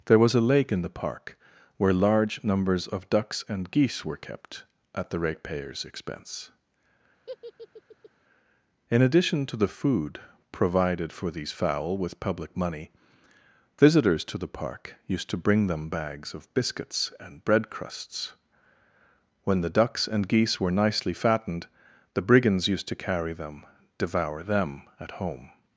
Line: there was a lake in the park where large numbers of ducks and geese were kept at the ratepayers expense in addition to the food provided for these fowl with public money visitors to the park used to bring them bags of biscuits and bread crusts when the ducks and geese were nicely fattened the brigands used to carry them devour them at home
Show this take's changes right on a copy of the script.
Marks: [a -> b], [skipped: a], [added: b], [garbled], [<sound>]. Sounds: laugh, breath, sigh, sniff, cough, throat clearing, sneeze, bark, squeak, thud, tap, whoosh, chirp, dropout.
there was a lake in the park where large numbers of ducks and geese were kept at the ratepayers expense [laugh] in addition to the food provided for these fowl with public money visitors to the park used to bring them bags of biscuits and bread crusts when the ducks and geese were nicely fattened the brigands used to carry them devour them at home